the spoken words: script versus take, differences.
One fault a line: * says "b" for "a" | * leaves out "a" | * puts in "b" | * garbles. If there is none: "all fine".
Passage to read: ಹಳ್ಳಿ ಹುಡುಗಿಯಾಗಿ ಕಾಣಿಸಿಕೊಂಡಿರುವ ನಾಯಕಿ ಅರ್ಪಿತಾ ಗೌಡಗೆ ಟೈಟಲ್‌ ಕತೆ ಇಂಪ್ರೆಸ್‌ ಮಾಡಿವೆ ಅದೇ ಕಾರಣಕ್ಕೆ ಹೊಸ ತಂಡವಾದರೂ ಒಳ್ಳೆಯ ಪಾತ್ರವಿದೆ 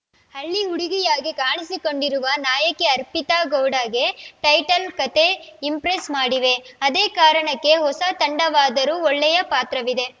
all fine